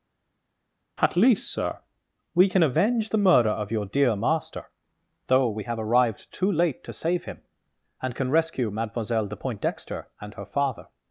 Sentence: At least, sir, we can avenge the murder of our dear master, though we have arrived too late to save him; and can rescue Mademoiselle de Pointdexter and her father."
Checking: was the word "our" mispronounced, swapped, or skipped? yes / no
yes